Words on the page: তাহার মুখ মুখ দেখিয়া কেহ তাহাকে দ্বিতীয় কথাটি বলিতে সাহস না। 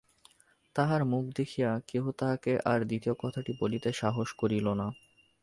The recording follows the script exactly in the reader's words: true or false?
false